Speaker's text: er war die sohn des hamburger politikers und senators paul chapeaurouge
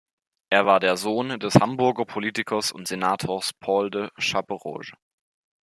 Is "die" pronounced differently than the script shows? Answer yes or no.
yes